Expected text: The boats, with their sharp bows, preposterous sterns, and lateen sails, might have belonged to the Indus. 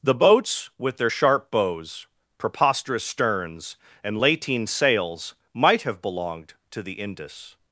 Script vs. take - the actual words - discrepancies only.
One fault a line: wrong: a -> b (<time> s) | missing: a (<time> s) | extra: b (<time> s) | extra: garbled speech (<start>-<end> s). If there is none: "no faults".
no faults